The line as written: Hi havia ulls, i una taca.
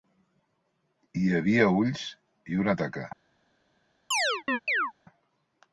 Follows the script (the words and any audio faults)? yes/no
no